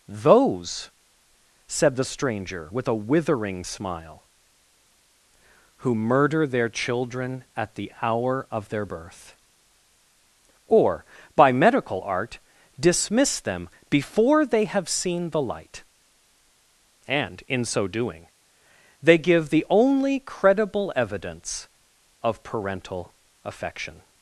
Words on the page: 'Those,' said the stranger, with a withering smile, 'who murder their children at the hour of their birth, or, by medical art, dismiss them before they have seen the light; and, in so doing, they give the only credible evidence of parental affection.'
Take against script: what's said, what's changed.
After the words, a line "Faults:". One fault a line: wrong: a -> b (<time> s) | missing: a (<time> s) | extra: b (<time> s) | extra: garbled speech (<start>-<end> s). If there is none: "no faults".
'Those,' said the stranger, with a withering smile, 'who murder their children at the hour of their birth, or, by medical art, dismiss them before they have seen the light; and, in so doing, they give the only credible evidence of parental affection.'
Faults:
no faults